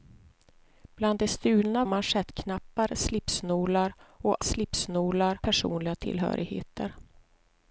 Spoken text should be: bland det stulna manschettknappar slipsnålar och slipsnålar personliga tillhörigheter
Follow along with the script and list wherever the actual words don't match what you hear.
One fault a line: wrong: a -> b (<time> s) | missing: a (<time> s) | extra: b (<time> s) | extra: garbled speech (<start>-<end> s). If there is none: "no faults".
no faults